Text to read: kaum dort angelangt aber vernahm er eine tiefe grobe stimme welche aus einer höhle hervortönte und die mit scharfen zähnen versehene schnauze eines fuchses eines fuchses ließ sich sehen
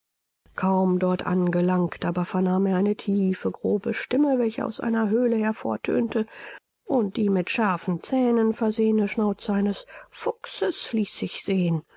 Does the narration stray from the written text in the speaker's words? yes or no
yes